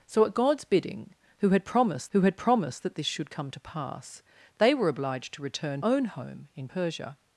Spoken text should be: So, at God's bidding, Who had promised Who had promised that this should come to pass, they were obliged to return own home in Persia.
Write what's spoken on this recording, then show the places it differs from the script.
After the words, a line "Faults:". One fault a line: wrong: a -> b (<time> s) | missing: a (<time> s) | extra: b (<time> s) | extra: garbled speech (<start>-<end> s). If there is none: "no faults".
So, at God's bidding, Who had promised Who had promised that this should come to pass, they were obliged to return own home in Persia.
Faults:
no faults